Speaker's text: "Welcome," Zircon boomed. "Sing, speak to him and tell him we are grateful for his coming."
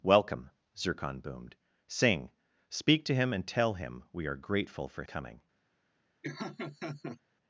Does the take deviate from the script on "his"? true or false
true